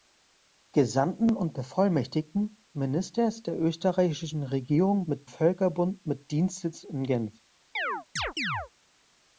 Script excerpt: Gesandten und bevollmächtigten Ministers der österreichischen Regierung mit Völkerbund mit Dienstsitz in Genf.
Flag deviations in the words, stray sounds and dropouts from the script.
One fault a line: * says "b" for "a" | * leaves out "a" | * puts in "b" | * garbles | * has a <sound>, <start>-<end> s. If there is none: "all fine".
* has a chirp, 7.8-8.7 s